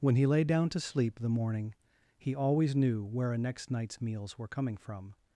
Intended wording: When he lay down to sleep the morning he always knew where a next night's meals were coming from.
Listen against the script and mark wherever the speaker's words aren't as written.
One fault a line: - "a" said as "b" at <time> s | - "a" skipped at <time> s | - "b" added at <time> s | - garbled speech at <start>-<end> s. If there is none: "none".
none